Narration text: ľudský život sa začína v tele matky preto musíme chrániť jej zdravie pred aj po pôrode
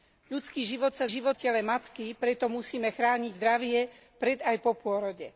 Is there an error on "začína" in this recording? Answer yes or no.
yes